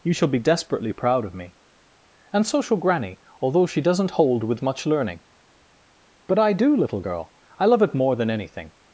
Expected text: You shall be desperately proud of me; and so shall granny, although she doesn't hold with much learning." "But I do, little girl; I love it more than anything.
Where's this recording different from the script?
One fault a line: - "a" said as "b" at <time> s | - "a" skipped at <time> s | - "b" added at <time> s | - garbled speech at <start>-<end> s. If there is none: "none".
none